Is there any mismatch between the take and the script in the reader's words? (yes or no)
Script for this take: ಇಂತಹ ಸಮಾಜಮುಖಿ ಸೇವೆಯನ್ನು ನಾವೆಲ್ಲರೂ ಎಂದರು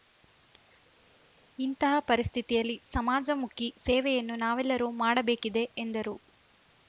yes